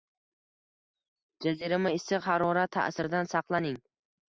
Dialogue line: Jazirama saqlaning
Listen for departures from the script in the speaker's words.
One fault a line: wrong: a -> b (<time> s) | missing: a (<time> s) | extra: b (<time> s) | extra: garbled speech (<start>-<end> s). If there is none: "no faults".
extra: issiq harorat ta`siridan (2.0 s)